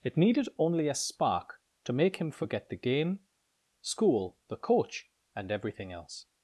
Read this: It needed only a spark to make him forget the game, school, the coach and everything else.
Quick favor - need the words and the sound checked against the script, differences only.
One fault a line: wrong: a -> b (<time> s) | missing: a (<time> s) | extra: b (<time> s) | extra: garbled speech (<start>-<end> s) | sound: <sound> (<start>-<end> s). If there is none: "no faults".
no faults